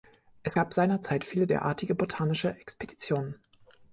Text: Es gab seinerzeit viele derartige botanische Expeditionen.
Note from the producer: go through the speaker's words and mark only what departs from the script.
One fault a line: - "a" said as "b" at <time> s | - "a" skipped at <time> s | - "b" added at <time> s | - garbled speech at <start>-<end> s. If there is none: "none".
none